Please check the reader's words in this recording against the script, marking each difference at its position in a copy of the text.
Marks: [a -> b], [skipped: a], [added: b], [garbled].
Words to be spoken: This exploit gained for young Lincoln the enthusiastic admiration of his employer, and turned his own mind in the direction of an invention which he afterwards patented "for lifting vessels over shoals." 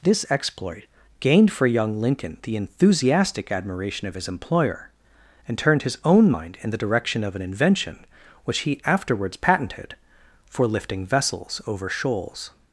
This exploit gained for young Lincoln the enthusiastic admiration of his employer, and turned his own mind in the direction of an invention which he afterwards patented "for lifting vessels over shoals."